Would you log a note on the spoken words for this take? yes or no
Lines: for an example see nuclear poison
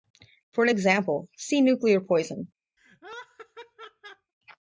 no